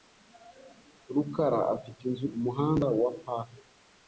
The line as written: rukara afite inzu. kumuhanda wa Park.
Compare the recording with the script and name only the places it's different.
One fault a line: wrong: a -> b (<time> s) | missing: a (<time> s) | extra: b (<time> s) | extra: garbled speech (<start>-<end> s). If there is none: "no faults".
no faults